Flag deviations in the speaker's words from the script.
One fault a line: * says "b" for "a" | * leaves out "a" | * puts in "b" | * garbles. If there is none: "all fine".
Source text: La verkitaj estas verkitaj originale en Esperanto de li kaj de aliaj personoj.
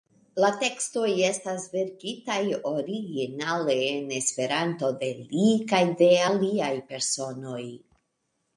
* says "tekstoj" for "verkitaj"